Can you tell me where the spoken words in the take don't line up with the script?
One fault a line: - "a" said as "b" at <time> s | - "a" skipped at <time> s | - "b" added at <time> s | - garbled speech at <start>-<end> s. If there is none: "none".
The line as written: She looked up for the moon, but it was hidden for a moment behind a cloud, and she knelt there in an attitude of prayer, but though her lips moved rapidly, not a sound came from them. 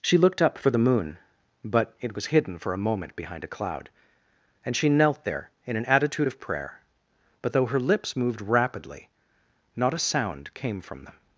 none